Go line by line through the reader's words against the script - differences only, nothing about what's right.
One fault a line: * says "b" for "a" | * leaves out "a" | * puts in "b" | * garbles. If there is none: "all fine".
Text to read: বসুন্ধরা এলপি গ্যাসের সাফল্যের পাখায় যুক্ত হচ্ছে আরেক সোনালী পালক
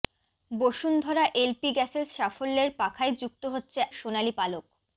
* leaves out "আরেক"